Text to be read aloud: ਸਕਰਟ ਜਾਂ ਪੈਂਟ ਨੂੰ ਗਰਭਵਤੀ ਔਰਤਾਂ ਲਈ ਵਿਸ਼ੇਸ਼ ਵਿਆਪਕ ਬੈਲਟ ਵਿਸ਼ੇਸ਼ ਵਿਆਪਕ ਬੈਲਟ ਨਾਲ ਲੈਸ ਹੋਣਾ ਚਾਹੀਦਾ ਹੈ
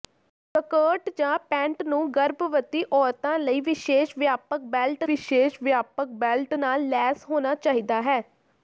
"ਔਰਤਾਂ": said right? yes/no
yes